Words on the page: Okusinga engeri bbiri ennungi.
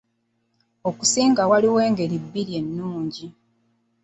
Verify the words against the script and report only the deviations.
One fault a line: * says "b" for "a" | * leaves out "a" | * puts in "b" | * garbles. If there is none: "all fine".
* puts in "waliwo"